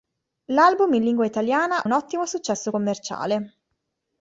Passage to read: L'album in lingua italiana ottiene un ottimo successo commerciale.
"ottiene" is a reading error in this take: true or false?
true